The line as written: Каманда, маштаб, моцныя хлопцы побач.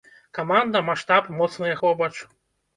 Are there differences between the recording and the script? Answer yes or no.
yes